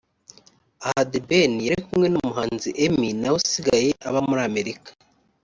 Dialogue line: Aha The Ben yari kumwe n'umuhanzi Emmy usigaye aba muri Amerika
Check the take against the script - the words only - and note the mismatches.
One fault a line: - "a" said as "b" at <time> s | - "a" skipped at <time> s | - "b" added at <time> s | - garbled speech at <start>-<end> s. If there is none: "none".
- "nawe" added at 3.2 s